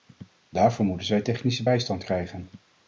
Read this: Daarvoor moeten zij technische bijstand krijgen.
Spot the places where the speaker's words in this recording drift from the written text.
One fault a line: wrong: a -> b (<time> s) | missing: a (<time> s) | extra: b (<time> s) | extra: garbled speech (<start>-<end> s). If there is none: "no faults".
no faults